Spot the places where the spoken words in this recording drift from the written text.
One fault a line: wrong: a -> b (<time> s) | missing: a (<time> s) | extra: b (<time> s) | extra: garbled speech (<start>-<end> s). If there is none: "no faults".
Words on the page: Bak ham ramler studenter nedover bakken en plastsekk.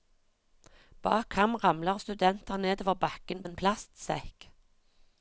no faults